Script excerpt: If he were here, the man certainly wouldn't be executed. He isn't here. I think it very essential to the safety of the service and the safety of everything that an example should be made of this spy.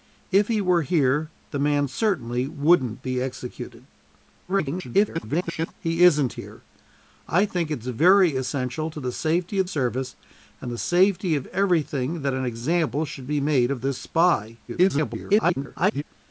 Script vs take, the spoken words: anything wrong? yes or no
yes